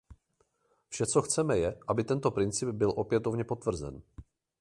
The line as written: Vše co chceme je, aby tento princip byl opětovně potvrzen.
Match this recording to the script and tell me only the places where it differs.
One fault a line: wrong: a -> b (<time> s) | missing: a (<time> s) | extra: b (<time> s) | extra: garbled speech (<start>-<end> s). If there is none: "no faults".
no faults